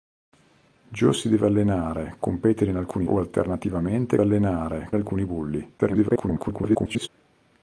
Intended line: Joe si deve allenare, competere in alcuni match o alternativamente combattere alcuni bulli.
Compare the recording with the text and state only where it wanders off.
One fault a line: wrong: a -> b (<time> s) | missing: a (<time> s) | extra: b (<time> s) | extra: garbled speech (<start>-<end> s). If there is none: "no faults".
missing: match (3.1 s)
wrong: combattere -> allenare (4.2 s)
extra: garbled speech (5.8-7.1 s)